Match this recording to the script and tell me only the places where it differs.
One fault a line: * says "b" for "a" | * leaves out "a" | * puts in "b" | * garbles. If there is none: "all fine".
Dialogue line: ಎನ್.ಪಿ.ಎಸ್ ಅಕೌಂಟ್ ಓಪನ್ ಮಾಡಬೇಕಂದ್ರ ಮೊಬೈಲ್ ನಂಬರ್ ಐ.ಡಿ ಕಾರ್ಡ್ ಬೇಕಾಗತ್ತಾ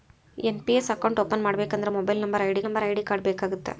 * puts in "ನಂಬರ್ ಐ.ಡಿ"